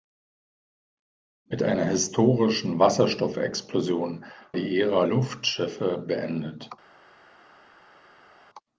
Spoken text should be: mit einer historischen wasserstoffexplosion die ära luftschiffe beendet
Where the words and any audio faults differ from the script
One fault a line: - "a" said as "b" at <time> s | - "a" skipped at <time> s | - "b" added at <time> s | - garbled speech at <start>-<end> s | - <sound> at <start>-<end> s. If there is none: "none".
none